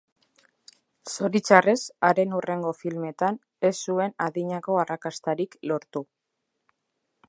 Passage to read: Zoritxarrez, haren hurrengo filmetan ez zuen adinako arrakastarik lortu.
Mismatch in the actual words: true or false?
false